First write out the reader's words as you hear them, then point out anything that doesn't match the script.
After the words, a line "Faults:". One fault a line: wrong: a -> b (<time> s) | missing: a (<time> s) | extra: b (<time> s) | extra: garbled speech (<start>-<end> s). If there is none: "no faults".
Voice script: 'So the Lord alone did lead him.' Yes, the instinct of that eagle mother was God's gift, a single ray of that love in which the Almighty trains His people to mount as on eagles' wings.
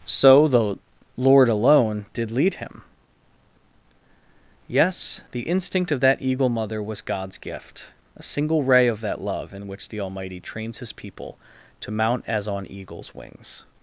'So the Lord alone did lead him.' Yes, the instinct of that eagle mother was God's gift, a single ray of that love in which the Almighty trains His people to mount as on eagles' wings.
Faults:
no faults